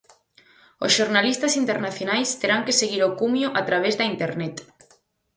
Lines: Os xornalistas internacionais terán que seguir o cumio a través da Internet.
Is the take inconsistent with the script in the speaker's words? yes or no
no